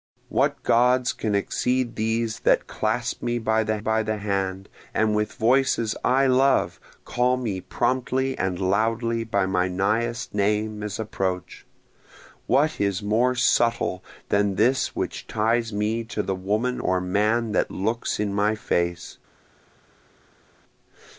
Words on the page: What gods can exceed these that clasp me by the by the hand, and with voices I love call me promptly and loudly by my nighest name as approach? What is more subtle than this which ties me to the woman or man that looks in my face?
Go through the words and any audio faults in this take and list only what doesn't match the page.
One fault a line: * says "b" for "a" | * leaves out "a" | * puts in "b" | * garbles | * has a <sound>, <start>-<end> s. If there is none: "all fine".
all fine